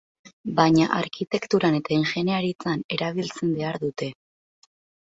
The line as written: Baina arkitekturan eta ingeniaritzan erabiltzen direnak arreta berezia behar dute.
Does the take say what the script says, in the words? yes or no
no